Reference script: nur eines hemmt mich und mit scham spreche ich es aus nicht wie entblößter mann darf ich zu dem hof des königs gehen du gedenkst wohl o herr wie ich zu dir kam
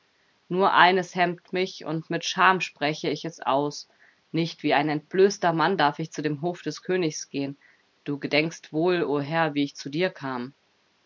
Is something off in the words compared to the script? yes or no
yes